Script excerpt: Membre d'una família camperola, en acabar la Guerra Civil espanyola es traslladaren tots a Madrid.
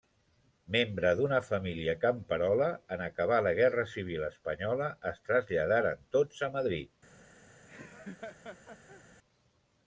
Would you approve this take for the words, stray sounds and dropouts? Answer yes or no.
no